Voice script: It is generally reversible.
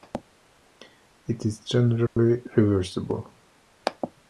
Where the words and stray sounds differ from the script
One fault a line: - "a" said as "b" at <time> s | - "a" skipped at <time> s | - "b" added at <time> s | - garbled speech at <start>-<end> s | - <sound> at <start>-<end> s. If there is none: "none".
- dropout at 2.1-2.2 s